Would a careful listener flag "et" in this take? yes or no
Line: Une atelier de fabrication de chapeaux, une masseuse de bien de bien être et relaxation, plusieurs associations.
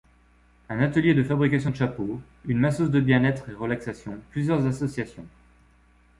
no